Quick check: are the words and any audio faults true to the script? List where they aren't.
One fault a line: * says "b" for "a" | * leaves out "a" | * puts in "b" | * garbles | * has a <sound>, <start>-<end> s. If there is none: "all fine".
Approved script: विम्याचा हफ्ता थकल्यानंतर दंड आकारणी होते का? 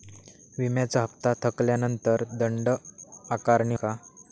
* leaves out "होते"